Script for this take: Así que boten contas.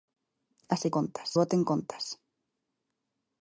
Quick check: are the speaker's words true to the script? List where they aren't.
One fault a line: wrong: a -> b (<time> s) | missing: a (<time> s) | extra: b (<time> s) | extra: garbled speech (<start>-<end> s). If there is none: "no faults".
wrong: que -> contas (1.0 s)